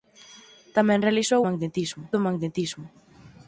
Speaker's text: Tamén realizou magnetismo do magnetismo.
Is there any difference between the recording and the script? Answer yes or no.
no